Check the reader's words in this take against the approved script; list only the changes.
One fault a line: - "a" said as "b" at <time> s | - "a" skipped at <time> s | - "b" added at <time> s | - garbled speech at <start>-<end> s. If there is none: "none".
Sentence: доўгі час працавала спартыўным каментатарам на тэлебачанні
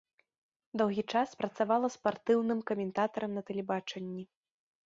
none